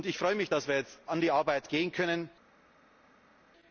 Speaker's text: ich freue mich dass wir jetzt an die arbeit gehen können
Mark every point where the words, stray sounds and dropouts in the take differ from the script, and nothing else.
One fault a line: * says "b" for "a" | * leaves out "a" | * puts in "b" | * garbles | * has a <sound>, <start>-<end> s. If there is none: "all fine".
all fine